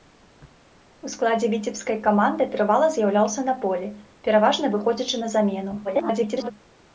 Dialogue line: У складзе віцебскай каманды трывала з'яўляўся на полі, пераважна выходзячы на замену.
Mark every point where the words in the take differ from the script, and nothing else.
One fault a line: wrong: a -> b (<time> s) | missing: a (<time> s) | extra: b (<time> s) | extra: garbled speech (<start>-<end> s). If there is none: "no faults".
extra: garbled speech (5.8-6.5 s)